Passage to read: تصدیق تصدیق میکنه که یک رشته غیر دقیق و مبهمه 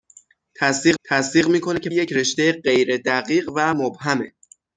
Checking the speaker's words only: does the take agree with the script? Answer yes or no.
yes